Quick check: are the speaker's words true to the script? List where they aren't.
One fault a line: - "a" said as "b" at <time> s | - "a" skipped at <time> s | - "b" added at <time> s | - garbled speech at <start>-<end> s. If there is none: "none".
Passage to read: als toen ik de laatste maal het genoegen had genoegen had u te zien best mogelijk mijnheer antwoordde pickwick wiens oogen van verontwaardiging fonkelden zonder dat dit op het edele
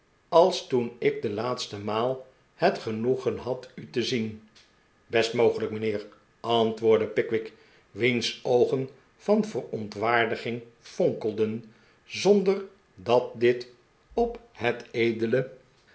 - "genoegen had" skipped at 3.7 s